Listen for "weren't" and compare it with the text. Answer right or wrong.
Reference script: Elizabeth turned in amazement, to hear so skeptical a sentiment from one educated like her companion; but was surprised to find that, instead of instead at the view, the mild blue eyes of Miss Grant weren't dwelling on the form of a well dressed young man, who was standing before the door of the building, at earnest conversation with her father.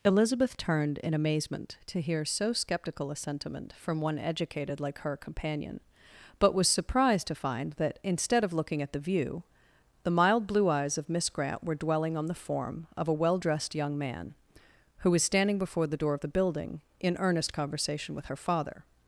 wrong